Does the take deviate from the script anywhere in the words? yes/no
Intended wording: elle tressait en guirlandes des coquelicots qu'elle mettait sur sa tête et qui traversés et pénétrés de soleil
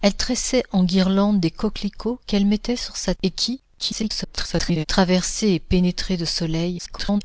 yes